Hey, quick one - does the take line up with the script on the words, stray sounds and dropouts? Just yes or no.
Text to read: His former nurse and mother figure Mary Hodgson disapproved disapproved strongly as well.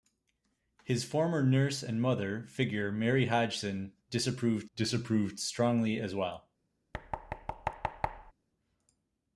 no